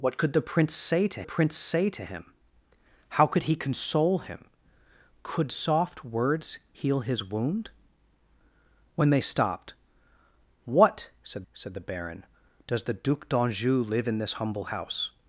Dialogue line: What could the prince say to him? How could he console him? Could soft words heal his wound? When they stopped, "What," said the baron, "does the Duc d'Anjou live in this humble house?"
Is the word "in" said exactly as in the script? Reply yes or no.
yes